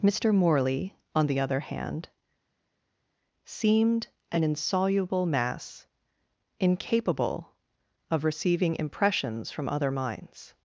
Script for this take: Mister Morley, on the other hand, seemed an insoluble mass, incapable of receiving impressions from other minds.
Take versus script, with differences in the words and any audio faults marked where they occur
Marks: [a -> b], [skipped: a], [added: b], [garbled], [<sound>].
Mister Morley, on the other hand, seemed an insoluble mass, incapable of receiving impressions from other minds.